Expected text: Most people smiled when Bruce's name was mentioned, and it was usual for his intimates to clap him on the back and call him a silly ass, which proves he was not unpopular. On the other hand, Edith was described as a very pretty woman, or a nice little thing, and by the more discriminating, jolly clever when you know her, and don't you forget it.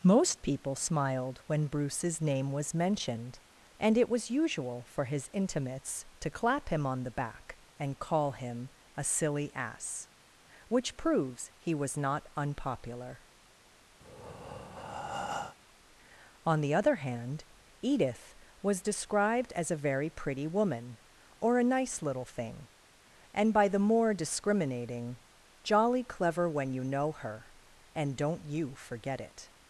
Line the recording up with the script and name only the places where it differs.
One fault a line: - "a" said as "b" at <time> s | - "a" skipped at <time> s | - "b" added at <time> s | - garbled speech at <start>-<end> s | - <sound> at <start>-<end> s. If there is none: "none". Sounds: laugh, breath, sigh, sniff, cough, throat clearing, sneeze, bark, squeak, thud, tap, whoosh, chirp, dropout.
- breath at 14.0-15.6 s